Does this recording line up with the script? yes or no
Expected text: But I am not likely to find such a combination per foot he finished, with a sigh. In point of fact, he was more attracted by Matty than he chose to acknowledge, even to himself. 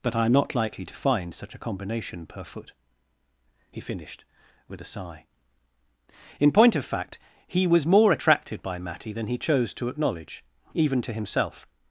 yes